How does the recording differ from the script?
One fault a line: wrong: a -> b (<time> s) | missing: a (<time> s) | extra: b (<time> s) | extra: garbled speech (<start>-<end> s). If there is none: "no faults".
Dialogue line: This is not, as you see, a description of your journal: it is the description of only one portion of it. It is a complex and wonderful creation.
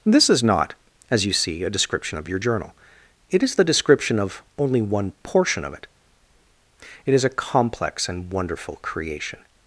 no faults